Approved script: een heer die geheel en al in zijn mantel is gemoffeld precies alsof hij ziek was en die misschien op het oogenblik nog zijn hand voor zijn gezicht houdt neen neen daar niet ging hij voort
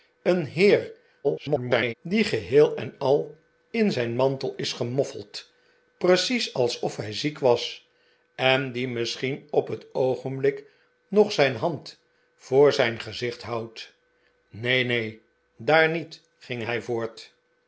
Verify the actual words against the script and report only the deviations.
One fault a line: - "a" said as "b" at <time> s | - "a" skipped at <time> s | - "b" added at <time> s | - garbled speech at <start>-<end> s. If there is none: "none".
- garbled speech at 1.2-1.9 s